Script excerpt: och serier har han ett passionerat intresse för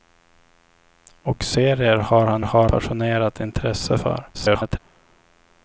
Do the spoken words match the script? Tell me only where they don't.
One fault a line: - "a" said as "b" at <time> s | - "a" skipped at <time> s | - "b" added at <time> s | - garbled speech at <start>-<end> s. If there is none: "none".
- "ett" said as "har" at 2.4 s
- garbled speech at 4.3-4.8 s